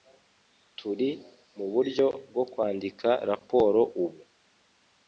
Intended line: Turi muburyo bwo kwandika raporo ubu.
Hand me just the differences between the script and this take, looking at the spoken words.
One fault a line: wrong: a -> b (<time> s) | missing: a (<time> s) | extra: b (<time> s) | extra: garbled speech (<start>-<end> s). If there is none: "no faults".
no faults